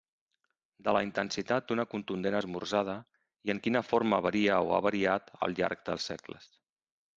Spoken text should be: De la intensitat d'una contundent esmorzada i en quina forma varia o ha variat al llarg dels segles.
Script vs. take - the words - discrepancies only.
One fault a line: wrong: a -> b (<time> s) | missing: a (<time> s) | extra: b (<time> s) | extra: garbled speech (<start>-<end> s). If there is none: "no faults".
no faults